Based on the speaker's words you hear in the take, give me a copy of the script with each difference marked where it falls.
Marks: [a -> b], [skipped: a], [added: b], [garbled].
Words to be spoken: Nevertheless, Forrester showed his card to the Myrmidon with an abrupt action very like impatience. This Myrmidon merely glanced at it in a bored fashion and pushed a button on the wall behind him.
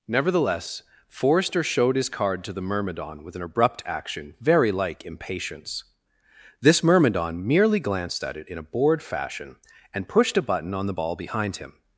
Nevertheless, Forrester showed his card to the Myrmidon with an abrupt action very like impatience. This Myrmidon merely glanced at it in a bored fashion and pushed a button on the [wall -> ball] behind him.